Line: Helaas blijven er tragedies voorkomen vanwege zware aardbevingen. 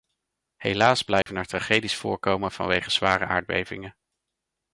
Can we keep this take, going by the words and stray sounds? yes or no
no